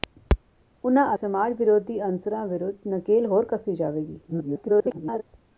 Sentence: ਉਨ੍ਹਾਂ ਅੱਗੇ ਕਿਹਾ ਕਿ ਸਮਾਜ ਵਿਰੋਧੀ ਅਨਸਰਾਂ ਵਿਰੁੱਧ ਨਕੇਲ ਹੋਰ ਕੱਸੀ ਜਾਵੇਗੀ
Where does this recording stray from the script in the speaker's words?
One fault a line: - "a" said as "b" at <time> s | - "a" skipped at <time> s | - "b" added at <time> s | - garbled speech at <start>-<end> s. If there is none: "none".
- "ਅੱਗੇ ਕਿਹਾ ਕਿ" skipped at 1.1 s
- garbled speech at 4.3-5.2 s